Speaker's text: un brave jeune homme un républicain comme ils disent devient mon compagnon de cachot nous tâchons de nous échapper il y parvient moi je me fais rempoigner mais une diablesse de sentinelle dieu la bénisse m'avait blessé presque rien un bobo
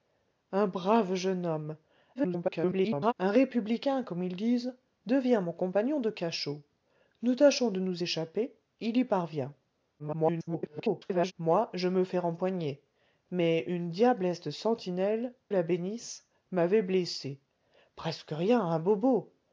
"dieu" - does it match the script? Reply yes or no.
no